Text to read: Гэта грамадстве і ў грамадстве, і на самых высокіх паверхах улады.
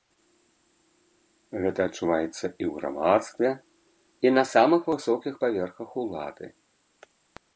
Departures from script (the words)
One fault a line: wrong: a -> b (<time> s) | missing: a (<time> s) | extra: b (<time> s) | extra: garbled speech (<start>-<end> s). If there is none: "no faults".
wrong: грамадстве -> адчуваецца (1.9 s)